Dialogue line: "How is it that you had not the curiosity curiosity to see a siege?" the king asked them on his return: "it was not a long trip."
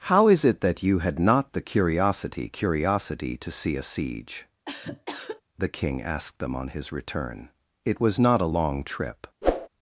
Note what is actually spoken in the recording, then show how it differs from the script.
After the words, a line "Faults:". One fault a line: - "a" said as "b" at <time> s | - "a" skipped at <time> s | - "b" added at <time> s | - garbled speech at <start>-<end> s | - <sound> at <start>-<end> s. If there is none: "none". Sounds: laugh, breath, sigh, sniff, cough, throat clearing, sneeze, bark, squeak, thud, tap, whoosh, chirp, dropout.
"How is it that you had not the curiosity curiosity to see a siege?" the king asked them on his return: "it was not a long trip."
Faults:
- cough at 4.7-5.4 s
- whoosh at 9.4-9.7 s